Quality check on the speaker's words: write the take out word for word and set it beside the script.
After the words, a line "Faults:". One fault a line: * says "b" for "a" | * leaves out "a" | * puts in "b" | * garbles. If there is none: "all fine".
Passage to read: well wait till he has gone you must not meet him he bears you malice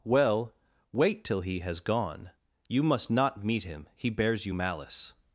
well wait till he has gone you must not meet him he bears you malice
Faults:
all fine